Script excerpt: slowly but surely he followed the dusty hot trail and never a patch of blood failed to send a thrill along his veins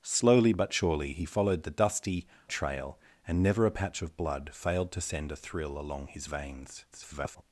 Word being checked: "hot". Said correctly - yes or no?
no